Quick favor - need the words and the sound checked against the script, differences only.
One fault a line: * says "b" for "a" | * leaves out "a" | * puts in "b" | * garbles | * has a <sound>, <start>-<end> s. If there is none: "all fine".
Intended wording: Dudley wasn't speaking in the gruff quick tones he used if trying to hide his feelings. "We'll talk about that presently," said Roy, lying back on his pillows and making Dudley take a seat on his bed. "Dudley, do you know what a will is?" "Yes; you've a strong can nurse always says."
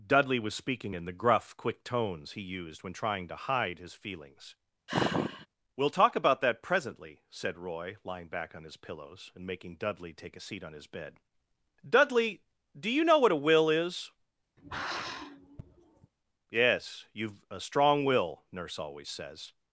* says "was" for "wasn't"
* says "when" for "if"
* has a sigh, 4.9-5.5 s
* has a sigh, 14.6-16.1 s
* says "will" for "can"